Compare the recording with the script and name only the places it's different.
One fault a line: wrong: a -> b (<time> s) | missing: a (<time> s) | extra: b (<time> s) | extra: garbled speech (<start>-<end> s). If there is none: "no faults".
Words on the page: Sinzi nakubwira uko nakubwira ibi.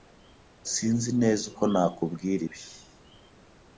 wrong: nakubwira -> neza (1.2 s)